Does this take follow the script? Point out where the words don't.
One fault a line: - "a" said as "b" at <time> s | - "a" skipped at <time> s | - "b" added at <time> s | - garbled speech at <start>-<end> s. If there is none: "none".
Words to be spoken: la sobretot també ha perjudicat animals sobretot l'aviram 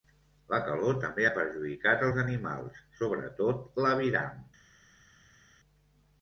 - "sobretot" said as "calor" at 0.7 s
- "els" added at 2.1 s